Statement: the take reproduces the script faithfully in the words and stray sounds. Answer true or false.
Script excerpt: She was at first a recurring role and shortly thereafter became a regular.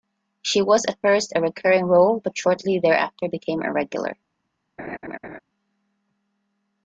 false